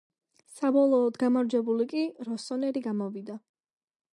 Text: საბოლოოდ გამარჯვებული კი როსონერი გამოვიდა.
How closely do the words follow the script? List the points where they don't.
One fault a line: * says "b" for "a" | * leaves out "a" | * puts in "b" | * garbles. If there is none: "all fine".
all fine